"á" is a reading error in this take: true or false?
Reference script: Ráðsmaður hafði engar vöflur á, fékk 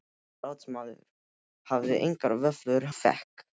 true